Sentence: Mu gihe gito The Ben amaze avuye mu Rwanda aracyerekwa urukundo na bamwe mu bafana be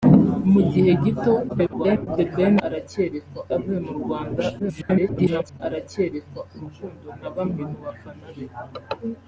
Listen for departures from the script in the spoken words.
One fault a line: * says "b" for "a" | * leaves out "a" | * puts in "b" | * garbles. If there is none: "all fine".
* garbles
* says "aracyerekwa" for "amaze"
* garbles